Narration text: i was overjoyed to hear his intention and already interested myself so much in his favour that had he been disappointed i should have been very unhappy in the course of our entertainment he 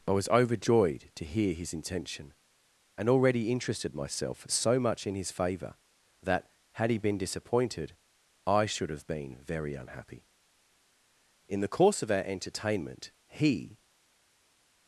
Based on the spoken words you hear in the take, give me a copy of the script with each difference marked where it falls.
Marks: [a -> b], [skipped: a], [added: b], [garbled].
i was overjoyed to hear his intention and already interested myself so much in his favour that had he been disappointed i should have been very unhappy in the course of our entertainment he